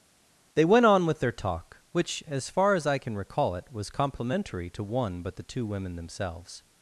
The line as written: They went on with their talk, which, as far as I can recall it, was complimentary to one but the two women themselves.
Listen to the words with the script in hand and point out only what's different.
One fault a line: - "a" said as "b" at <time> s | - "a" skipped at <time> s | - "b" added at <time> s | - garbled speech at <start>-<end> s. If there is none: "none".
none